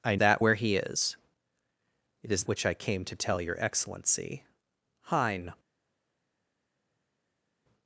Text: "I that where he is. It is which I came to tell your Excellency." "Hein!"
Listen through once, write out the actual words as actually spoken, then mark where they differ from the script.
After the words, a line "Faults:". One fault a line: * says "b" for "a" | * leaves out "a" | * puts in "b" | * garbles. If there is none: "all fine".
"I that where he is. It is which I came to tell your Excellency." "Hein!"
Faults:
all fine